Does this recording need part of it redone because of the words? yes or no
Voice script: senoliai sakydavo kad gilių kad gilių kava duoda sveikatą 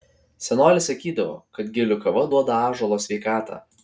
yes